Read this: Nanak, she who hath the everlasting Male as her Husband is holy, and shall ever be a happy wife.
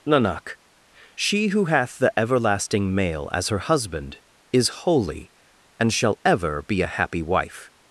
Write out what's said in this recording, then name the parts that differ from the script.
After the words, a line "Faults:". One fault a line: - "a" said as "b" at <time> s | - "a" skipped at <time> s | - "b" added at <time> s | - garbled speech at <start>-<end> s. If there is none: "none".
Nanak, she who hath the everlasting Male as her Husband is holy, and shall ever be a happy wife.
Faults:
none